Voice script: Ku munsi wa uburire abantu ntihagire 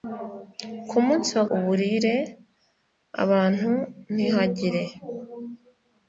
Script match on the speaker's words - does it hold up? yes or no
yes